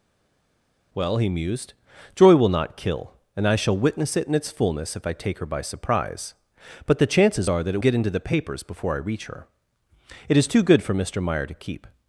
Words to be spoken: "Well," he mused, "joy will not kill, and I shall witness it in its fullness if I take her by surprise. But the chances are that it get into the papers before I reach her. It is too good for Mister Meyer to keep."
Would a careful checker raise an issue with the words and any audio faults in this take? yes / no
no